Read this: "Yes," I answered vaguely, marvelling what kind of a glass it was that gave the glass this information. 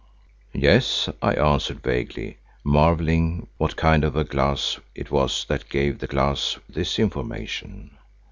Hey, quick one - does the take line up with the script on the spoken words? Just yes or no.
yes